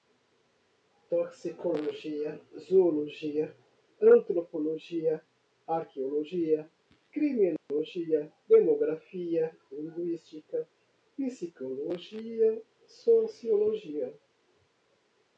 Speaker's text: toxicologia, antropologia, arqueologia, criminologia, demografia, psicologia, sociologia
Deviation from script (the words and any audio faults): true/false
true